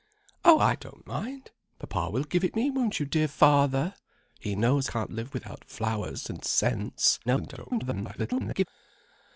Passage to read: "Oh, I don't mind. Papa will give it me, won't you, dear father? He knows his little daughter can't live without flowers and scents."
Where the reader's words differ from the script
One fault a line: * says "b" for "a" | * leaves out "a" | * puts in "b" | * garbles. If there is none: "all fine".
* leaves out "his little daughter"
* garbles